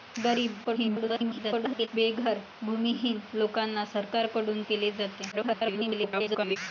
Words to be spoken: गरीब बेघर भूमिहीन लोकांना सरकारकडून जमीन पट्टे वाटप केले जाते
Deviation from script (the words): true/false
true